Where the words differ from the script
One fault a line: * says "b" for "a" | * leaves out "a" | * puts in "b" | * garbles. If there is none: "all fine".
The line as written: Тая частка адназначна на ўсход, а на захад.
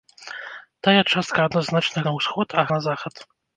all fine